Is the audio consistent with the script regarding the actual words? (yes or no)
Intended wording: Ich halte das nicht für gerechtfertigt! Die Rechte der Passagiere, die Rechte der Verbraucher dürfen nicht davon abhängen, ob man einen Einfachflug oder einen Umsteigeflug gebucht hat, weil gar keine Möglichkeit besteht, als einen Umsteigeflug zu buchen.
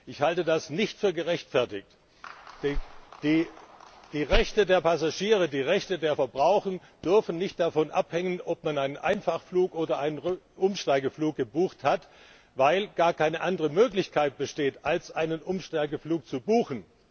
no